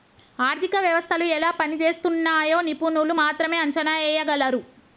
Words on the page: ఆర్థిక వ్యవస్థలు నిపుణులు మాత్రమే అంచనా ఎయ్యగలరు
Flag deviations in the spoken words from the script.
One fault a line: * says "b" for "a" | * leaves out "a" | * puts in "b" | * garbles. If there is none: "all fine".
* puts in "ఎలా పనిజేస్తున్నయ్యో"